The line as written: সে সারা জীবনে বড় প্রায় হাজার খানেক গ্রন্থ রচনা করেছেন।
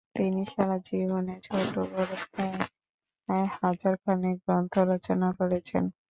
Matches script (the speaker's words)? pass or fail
fail